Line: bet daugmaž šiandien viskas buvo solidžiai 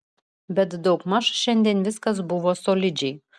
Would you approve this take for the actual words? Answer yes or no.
yes